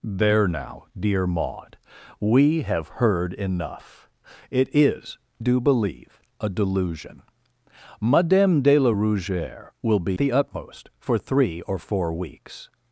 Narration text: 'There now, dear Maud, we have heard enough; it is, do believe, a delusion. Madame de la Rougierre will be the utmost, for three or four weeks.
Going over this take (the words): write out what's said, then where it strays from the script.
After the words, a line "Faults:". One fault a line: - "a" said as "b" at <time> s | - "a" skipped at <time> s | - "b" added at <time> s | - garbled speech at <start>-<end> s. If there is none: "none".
'There now, dear Maud, we have heard enough; it is, do believe, a delusion. Madame de la Rougierre will be the utmost, for three or four weeks.
Faults:
none